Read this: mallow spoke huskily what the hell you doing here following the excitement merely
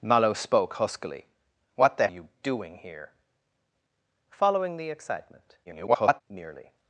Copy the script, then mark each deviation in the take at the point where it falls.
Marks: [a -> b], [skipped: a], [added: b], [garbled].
mallow spoke huskily what the [skipped: hell] you doing here following the excitement [garbled] merely